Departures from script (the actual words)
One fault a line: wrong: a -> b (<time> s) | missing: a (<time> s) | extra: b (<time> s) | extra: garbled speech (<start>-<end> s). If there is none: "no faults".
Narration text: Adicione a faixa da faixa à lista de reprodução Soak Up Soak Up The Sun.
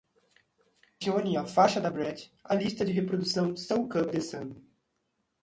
wrong: faixa -> brat (1.9 s)
missing: Soak Up (4.1 s)